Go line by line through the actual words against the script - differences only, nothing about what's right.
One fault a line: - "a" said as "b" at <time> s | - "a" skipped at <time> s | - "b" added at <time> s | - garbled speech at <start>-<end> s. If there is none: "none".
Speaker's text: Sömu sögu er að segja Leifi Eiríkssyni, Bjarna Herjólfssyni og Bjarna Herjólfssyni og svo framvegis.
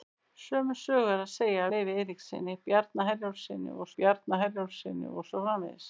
none